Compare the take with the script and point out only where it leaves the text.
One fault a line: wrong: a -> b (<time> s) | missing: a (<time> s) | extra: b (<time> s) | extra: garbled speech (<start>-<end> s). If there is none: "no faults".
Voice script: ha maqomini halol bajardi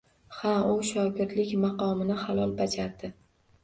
extra: u shogirdlik (0.7 s)